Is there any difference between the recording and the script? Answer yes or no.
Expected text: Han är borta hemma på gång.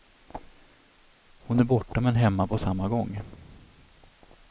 yes